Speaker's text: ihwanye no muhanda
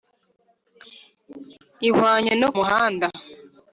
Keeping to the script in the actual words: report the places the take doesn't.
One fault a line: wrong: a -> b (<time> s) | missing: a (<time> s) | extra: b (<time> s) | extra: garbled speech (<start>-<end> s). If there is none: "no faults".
no faults